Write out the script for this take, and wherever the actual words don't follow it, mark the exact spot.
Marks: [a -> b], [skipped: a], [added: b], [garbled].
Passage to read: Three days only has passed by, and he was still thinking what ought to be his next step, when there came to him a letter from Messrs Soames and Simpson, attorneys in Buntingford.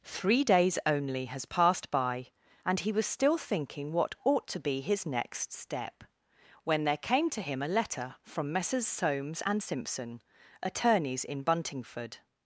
Three days only has passed by, and he was still thinking what ought to be his next step, when there came to him a letter from Messrs Soames and Simpson, attorneys in Buntingford.